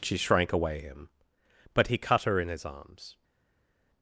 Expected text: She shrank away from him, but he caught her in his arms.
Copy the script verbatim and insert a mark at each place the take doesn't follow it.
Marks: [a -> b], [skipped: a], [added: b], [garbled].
She shrank away [skipped: from] him, but he [caught -> cut] her in his arms.